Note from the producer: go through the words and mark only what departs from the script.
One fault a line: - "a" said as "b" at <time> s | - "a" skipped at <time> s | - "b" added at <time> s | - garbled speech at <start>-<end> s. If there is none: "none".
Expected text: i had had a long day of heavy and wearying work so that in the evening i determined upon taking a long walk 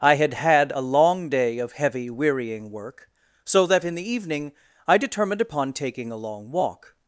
- "and" skipped at 2.1 s